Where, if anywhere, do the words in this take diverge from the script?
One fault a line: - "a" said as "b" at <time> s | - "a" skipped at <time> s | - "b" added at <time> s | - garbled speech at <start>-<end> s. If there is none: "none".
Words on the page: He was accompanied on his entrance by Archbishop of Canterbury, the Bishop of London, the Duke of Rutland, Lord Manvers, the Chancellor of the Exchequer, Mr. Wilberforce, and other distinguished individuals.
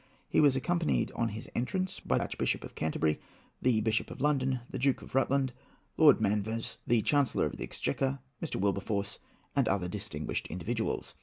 none